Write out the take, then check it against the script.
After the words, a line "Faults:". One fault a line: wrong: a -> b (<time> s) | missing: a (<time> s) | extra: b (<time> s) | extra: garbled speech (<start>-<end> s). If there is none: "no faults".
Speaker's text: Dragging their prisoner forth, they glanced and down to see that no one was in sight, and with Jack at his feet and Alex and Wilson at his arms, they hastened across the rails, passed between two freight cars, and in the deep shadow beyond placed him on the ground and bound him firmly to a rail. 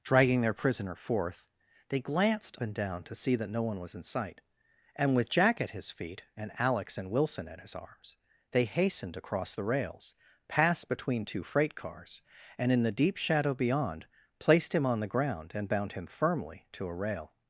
Dragging their prisoner forth, they glanced and down to see that no one was in sight, and with Jack at his feet and Alex and Wilson at his arms, they hastened across the rails, passed between two freight cars, and in the deep shadow beyond placed him on the ground and bound him firmly to a rail.
Faults:
no faults